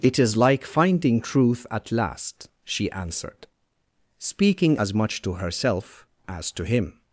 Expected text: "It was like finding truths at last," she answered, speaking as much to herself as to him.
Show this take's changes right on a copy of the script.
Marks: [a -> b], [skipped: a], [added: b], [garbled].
"It [was -> is] like finding [truths -> truth] at last," she answered, speaking as much to herself as to him.